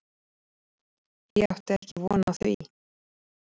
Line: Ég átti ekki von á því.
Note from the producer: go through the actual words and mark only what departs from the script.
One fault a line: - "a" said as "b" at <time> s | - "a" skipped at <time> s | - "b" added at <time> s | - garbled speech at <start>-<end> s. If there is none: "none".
none